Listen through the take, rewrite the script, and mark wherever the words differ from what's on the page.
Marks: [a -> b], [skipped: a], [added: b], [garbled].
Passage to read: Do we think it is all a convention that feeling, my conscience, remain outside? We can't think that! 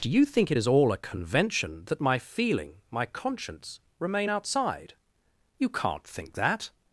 Do [we -> you] think it is all a convention that [added: my] feeling, my conscience, remain outside? [We -> You] can't think that!